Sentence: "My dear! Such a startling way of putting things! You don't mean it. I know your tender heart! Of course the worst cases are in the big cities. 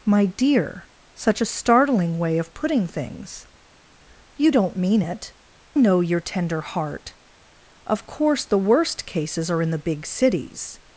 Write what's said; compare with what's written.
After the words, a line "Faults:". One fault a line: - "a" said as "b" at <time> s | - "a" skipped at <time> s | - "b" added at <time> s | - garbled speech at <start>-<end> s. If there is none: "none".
"My dear! Such a startling way of putting things! You don't mean it. know your tender heart! Of course the worst cases are in the big cities.
Faults:
- "I" skipped at 5.3 s